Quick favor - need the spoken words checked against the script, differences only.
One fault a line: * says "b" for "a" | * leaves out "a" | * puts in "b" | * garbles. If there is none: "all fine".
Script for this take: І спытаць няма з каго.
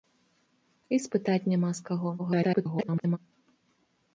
* garbles